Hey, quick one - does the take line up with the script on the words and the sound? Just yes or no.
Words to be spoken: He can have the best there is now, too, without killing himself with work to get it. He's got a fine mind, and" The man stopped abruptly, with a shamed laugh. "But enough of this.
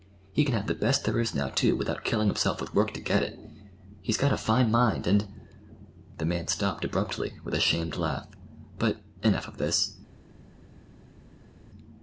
yes